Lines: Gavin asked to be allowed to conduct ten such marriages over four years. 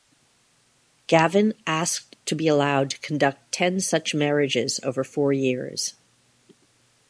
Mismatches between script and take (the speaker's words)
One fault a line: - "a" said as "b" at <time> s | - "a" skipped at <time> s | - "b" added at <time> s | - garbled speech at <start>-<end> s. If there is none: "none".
none